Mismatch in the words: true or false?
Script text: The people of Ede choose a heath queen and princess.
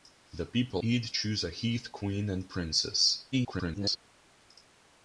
true